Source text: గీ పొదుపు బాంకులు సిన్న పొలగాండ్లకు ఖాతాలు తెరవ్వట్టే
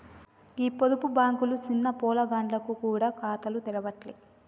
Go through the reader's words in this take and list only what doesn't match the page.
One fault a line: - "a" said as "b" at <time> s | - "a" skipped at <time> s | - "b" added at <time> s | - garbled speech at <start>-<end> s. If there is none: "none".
- "గూడ" added at 2.8 s